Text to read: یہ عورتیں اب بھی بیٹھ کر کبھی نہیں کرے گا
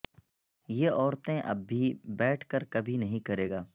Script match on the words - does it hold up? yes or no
yes